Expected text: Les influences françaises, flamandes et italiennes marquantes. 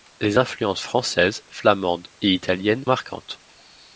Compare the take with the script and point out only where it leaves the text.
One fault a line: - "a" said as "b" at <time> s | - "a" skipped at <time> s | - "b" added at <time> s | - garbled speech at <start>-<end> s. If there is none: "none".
none